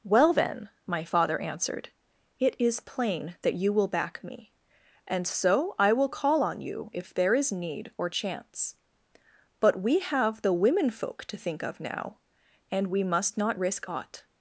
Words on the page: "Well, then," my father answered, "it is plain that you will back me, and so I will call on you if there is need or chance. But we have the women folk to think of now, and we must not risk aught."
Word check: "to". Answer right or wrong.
right